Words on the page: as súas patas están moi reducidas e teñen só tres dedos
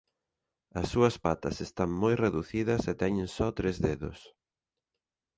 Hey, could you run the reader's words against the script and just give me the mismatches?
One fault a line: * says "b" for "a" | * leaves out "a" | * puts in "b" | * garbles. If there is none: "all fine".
all fine